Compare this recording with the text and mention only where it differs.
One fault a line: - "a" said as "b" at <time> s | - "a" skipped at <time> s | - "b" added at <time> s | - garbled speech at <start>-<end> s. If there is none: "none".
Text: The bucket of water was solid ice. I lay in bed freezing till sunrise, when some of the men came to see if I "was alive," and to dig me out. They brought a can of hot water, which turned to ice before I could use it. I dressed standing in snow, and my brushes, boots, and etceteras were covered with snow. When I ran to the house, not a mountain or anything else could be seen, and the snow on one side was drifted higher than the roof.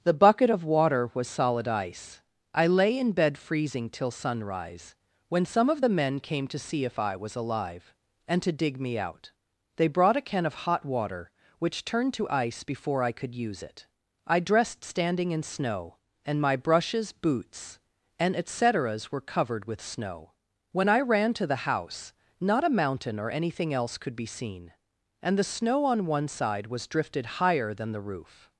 none